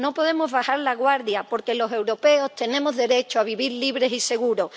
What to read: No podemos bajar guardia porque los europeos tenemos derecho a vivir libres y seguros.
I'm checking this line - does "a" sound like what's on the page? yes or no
yes